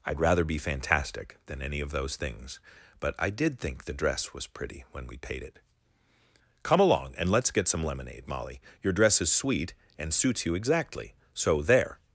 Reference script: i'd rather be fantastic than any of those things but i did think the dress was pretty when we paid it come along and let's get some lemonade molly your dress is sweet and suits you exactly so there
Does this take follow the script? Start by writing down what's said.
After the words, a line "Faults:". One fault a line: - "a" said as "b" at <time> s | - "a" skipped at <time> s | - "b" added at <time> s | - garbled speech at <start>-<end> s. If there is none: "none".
i'd rather be fantastic than any of those things but i did think the dress was pretty when we paid it come along and let's get some lemonade molly your dress is sweet and suits you exactly so there
Faults:
none